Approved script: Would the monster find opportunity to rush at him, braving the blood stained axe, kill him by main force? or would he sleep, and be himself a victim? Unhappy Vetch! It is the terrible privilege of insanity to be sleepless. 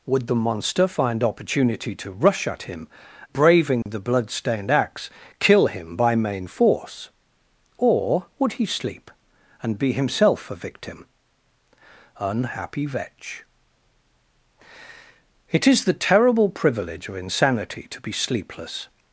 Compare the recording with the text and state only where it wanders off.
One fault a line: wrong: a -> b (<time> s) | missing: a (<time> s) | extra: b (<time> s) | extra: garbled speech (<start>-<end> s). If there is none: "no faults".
no faults